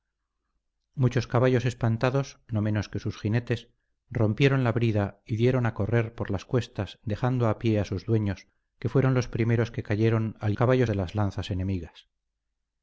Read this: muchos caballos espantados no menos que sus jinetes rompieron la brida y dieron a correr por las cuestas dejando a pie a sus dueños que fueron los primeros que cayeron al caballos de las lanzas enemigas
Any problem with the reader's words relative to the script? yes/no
no